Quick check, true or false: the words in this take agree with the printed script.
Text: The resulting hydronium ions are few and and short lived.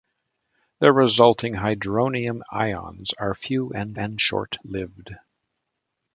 true